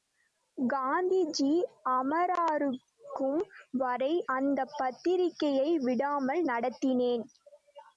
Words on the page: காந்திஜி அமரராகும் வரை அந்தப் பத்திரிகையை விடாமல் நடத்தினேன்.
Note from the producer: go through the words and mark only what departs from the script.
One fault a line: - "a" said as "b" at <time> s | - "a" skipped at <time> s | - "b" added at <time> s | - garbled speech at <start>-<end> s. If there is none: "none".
none